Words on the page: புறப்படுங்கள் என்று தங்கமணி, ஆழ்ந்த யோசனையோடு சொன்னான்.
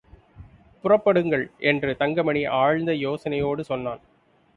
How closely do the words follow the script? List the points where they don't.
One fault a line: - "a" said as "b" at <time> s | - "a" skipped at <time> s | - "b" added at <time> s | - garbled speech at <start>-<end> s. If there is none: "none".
none